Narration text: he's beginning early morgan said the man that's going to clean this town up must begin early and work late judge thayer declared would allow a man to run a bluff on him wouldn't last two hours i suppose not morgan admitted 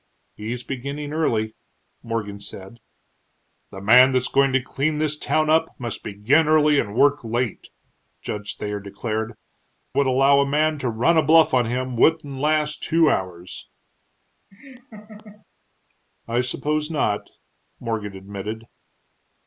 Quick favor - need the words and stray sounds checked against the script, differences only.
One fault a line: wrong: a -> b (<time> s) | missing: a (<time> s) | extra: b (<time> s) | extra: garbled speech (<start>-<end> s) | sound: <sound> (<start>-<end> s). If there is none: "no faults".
sound: laugh (14.5-15.5 s)